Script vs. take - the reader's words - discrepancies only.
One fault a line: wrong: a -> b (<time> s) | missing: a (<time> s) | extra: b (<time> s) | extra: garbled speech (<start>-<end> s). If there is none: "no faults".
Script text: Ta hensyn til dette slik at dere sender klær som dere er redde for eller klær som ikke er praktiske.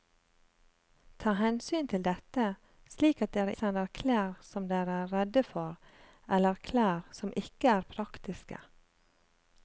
no faults